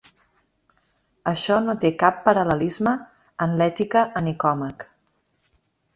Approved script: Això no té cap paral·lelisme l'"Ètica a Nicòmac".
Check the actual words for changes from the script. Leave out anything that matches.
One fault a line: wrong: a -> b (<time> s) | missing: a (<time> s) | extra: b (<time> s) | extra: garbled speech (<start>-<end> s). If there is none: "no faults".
extra: en (3.5 s)